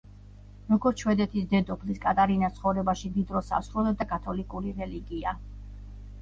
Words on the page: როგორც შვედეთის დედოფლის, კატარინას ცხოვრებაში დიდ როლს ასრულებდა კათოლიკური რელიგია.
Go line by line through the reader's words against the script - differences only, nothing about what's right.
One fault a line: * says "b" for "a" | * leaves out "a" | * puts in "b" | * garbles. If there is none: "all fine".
all fine